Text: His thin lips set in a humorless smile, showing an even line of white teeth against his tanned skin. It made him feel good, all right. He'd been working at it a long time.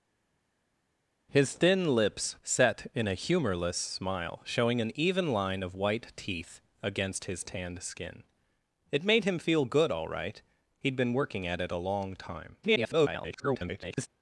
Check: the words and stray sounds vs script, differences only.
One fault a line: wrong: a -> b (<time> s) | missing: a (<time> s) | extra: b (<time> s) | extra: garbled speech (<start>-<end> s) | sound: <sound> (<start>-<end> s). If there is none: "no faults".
extra: garbled speech (12.6-14.1 s)